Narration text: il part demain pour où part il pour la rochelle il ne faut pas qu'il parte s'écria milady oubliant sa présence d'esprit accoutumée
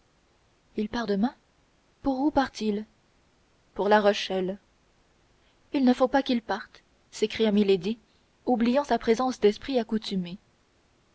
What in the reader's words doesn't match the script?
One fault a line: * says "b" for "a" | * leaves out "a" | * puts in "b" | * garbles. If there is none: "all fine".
all fine